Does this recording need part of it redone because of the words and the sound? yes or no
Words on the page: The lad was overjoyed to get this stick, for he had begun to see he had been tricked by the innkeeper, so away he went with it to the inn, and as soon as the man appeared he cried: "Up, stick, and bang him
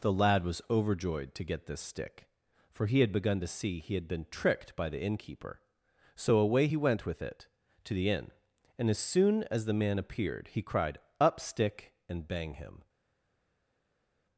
no